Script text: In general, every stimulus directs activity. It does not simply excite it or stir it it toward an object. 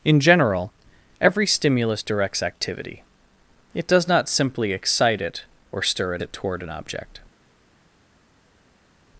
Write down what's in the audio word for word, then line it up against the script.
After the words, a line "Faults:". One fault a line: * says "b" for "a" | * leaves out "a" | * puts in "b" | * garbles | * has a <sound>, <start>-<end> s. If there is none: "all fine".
In general, every stimulus directs activity. It does not simply excite it or stir it it toward an object.
Faults:
all fine